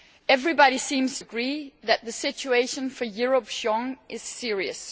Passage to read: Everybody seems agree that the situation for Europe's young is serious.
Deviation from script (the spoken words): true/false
false